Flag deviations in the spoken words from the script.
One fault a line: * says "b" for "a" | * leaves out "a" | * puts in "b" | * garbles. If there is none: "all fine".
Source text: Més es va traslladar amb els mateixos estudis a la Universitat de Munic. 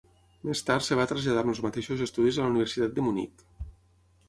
* puts in "tard"